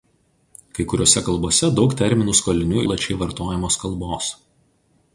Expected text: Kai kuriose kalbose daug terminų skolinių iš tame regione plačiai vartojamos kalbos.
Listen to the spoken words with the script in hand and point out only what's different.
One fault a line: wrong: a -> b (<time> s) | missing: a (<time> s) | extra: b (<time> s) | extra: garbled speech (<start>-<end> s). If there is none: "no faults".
missing: iš tame regione (2.9 s)